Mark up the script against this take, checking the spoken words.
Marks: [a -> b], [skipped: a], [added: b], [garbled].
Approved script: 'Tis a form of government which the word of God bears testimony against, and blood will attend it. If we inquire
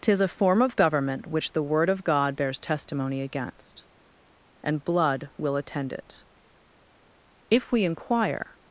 'Tis a form of government which the word of God bears testimony against, and blood will attend it. If we inquire